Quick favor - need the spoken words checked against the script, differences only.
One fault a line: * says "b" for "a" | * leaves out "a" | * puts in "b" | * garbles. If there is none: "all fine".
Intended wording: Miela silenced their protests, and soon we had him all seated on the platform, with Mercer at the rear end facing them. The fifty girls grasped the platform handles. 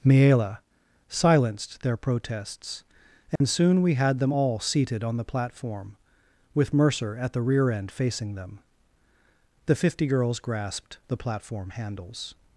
* says "them" for "him"